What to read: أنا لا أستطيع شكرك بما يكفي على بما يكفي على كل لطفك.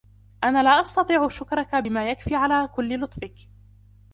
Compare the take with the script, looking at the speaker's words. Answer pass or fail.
fail